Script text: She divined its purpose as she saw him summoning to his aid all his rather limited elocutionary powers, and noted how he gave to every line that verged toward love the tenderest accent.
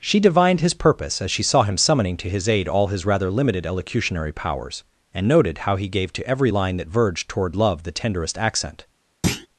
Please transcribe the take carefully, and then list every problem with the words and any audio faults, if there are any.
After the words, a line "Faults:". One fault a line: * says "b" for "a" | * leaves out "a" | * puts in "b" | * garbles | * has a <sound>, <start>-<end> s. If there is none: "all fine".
She divined his purpose as she saw him summoning to his aid all his rather limited elocutionary powers, and noted how he gave to every line that verged toward love the tenderest accent.
Faults:
* says "his" for "its"
* has a thud, 9.2-9.5 s